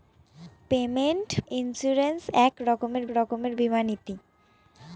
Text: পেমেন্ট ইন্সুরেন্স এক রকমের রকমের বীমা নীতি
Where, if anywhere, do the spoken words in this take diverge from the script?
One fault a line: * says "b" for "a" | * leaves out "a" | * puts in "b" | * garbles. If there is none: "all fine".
all fine